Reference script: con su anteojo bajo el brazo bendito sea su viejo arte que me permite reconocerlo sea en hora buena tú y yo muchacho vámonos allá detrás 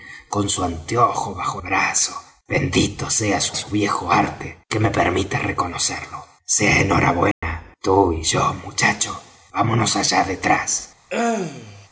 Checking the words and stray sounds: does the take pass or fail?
fail